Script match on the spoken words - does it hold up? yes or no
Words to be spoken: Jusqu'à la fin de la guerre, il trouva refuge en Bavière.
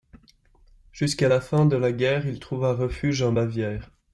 yes